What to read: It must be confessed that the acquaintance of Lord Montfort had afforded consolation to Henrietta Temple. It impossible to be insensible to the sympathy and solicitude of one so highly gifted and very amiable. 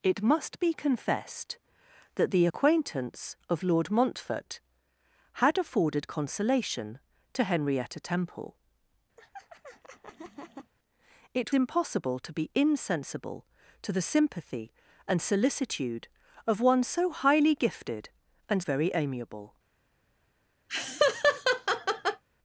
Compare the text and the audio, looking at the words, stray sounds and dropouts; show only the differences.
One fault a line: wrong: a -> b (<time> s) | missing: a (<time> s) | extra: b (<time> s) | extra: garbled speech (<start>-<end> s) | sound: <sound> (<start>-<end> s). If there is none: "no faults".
sound: laugh (9.2-10.7 s)
sound: laugh (20.7-22.2 s)